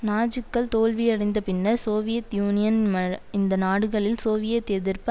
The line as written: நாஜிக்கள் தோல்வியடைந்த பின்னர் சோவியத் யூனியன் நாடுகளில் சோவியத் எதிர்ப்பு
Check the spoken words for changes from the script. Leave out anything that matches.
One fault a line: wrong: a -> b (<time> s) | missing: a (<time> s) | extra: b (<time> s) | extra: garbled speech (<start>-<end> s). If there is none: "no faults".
extra: இந்த (3.3 s)